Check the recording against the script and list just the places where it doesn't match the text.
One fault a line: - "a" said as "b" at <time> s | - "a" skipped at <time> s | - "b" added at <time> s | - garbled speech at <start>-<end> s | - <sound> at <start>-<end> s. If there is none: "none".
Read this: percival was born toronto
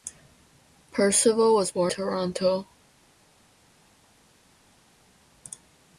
none